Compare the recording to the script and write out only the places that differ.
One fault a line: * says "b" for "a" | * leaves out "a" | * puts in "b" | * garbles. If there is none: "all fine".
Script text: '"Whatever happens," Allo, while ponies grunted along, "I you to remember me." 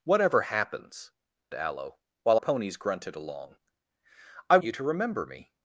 all fine